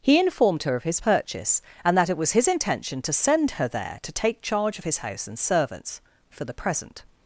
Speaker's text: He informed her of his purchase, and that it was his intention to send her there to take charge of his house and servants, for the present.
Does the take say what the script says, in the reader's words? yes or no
yes